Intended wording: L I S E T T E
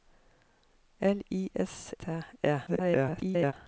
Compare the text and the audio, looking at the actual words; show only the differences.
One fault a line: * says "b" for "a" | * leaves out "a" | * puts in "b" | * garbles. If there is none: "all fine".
* leaves out "E T"
* garbles